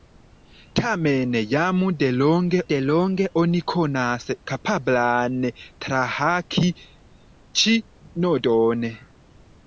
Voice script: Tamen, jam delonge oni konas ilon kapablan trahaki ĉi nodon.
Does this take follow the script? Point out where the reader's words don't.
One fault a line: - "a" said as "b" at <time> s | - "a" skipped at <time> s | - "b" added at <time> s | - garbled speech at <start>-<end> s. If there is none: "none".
- "delonge" added at 2.7 s
- "ilon" skipped at 4.3 s